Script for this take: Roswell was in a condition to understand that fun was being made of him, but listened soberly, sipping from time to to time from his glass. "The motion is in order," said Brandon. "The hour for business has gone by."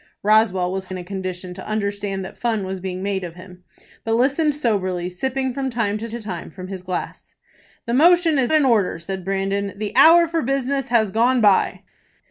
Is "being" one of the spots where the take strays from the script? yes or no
no